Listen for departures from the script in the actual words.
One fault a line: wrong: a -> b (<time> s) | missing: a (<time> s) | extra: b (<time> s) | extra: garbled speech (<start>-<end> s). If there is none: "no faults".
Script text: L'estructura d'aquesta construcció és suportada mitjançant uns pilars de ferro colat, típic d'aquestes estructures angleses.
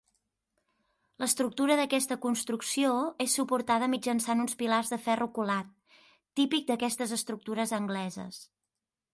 no faults